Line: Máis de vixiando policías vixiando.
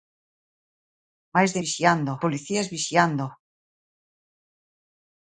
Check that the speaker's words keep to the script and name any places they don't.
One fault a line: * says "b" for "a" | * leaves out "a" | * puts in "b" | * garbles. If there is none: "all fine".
all fine